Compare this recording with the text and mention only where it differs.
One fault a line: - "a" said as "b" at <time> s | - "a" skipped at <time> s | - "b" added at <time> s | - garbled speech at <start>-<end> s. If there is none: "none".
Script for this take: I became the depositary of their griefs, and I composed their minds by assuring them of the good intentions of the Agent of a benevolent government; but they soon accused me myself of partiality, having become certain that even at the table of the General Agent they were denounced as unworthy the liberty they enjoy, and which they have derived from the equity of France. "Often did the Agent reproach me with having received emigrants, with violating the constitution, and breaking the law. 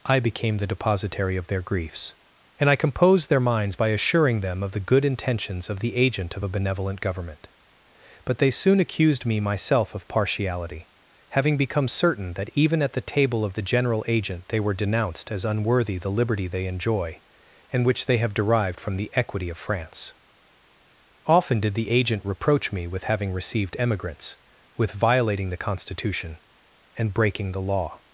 none